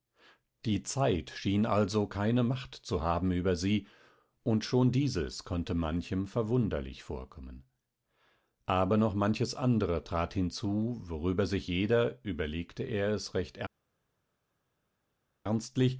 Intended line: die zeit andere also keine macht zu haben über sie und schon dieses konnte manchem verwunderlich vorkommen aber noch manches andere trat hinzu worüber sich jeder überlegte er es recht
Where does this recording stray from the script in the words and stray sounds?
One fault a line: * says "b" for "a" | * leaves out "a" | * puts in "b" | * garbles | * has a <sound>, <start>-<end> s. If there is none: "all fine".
* says "schien" for "andere"